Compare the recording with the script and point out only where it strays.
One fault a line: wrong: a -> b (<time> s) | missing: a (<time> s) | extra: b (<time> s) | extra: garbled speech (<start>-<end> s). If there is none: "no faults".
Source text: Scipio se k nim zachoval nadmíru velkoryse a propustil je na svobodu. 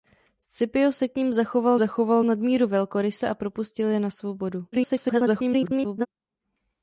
extra: zachoval (1.8 s)
extra: garbled speech (4.7-6.1 s)